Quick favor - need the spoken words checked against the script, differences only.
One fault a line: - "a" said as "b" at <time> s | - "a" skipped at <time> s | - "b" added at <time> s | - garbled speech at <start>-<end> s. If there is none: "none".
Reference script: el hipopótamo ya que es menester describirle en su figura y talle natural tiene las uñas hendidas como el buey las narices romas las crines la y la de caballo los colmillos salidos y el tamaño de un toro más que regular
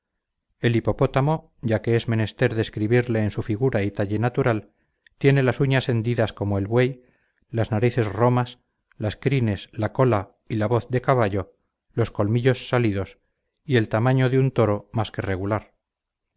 - "cola" added at 9.9 s
- "voz" added at 10.7 s